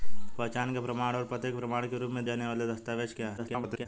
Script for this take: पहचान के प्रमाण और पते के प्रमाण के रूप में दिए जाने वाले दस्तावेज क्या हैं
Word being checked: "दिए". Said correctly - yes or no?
no